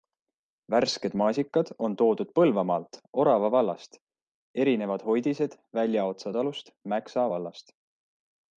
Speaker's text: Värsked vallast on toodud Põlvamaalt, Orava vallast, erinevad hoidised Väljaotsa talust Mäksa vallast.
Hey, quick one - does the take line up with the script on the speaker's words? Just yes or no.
no